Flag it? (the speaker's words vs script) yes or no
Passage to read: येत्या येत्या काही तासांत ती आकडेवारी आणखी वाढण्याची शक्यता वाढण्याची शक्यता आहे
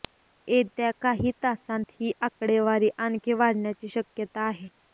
yes